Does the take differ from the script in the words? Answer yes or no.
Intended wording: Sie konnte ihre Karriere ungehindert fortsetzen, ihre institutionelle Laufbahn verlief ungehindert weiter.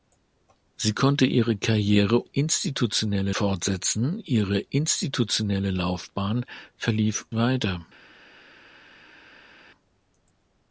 yes